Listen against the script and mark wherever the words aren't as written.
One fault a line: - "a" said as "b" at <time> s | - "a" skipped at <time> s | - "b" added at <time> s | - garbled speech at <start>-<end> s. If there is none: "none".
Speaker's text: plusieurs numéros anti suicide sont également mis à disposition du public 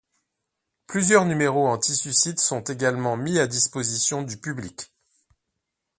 none